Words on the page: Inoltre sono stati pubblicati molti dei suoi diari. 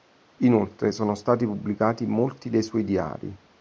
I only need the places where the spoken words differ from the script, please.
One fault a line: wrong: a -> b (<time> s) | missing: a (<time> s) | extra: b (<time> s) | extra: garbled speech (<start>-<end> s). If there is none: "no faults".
no faults